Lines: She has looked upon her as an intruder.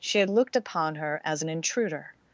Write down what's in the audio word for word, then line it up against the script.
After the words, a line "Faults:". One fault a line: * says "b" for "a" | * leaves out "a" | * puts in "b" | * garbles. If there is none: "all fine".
She had looked upon her as an intruder.
Faults:
* says "had" for "has"